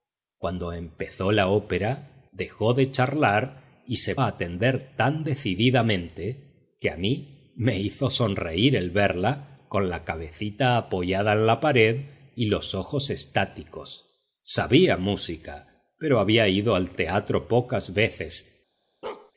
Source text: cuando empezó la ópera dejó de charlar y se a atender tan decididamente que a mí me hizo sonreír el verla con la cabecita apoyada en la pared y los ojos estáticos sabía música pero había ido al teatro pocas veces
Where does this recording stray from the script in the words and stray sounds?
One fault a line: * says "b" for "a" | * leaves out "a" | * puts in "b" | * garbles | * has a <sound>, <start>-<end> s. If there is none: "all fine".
* has a bark, 19.0-19.3 s